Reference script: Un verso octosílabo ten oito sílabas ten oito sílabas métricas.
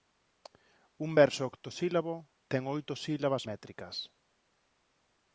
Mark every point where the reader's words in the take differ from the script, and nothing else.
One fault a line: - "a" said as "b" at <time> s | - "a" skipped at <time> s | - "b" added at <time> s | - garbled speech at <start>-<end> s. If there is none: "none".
- "ten oito sílabas" skipped at 3.4 s